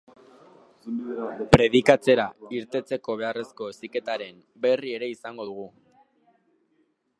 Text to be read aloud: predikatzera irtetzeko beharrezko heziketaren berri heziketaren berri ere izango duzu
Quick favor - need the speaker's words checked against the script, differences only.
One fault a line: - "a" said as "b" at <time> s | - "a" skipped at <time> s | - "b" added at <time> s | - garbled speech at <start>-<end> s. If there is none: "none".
- "heziketaren berri" skipped at 5.0 s
- "duzu" said as "dugu" at 5.5 s